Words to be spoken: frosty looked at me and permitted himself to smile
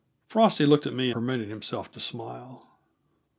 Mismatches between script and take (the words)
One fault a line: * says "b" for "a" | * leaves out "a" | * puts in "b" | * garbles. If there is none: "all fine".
* leaves out "and"